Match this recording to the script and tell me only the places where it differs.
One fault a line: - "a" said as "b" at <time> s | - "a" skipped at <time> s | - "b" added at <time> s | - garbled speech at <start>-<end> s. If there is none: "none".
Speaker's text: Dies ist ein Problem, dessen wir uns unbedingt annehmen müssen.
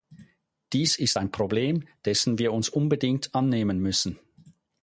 none